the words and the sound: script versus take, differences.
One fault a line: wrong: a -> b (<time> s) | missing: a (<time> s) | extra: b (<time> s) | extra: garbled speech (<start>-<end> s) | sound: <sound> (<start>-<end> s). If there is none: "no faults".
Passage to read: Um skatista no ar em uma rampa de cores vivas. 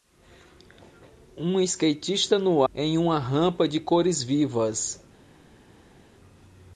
missing: ar (2.6 s)